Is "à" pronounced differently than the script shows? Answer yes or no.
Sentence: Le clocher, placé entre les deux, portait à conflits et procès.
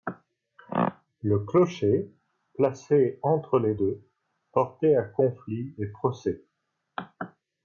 no